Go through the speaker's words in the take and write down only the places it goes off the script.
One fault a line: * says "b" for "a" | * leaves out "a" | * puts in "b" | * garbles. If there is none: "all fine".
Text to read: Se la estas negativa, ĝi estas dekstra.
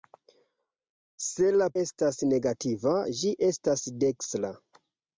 all fine